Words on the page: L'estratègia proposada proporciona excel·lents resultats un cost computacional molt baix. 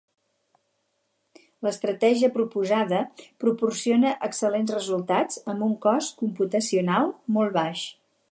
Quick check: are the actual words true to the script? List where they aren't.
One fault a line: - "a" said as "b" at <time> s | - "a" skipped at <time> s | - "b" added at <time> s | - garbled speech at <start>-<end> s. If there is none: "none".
- "amb" added at 5.5 s